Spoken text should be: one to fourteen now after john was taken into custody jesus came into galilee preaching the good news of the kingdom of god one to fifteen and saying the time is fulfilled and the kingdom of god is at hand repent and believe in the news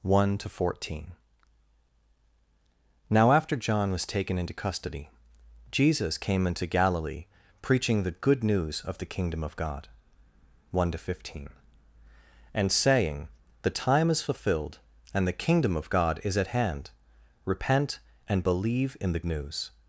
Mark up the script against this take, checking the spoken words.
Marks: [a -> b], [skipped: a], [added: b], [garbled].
one to fourteen now after john was taken into custody jesus came into galilee preaching the good news of the kingdom of god one to fifteen and saying the time is fulfilled and the kingdom of god is at hand repent and believe in the news